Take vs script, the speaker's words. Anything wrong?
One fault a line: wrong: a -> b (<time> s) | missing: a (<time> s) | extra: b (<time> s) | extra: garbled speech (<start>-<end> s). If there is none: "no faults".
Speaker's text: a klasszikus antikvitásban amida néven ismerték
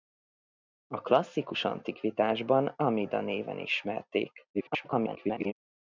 extra: garbled speech (4.5-5.5 s)